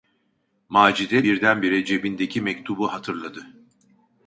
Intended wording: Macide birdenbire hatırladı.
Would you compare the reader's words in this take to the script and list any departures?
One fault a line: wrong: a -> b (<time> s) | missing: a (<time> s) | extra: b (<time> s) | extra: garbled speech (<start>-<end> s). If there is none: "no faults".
extra: cebindeki mektubu (1.8 s)